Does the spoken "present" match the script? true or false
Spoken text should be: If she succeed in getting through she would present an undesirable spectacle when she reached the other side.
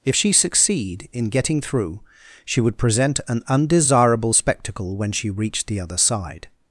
true